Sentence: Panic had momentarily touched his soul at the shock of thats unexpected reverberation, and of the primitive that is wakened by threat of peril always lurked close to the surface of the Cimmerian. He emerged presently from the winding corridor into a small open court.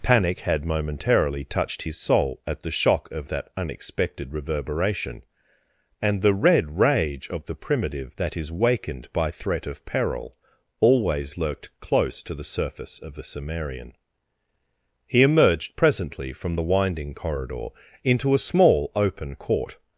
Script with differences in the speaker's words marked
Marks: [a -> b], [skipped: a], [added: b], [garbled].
Panic had momentarily touched his soul at the shock of [thats -> that] unexpected reverberation, and [added: the red rage] of the primitive that is wakened by threat of peril always lurked close to the surface of the Cimmerian. He emerged presently from the winding corridor into a small open court.